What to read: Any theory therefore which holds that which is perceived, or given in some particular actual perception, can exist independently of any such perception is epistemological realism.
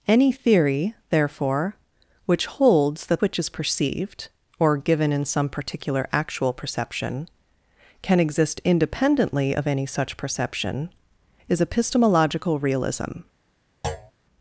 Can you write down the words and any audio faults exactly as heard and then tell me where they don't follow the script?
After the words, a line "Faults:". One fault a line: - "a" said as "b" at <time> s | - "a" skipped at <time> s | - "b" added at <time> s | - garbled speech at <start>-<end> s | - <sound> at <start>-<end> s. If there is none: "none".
Any theory therefore which holds that which is perceived, or given in some particular actual perception, can exist independently of any such perception is epistemological realism.
Faults:
- thud at 13.8-14.1 s